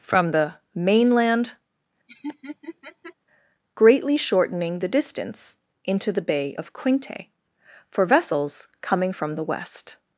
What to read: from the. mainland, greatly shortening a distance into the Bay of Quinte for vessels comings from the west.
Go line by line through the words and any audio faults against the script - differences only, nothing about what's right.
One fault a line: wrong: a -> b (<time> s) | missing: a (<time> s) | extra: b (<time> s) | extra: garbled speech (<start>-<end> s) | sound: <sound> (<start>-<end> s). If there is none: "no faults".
sound: laugh (2.1-3.1 s)
wrong: a -> the (4.8 s)
wrong: comings -> coming (8.8 s)